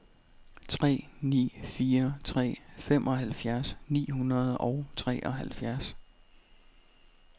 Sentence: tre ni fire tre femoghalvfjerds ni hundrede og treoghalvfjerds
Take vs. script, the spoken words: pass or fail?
pass